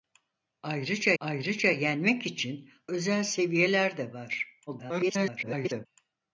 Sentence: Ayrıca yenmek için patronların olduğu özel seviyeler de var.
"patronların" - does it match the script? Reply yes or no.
no